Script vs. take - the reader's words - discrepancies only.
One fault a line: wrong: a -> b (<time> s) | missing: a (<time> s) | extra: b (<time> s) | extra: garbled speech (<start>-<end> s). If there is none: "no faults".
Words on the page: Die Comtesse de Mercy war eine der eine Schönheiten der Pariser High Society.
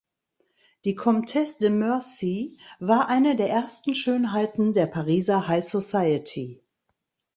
wrong: eine -> ersten (3.5 s)